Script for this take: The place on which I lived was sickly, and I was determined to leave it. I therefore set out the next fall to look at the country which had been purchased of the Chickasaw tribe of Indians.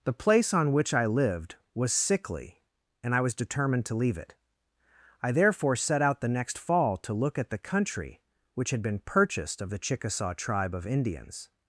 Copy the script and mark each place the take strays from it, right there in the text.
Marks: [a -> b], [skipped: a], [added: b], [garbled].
The place on which I lived was sickly, and I was determined to leave it. I therefore set out the next fall to look at the country which had been purchased of the Chickasaw tribe of Indians.